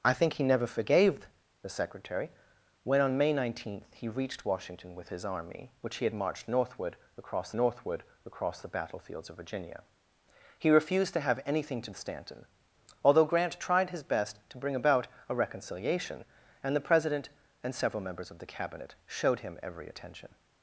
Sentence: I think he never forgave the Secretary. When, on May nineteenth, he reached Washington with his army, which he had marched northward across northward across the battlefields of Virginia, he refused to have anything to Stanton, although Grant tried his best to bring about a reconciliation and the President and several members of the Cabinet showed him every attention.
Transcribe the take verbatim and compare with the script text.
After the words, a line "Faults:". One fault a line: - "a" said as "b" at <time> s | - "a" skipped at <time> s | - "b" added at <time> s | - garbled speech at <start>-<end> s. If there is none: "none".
I think he never forgave the Secretary. When, on May nineteenth, he reached Washington with his army, which he had marched northward across northward across the battlefields of Virginia, he refused to have anything to Stanton, although Grant tried his best to bring about a reconciliation and the President and several members of the Cabinet showed him every attention.
Faults:
none